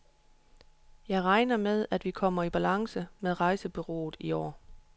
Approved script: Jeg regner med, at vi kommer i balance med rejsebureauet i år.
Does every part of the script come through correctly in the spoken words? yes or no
yes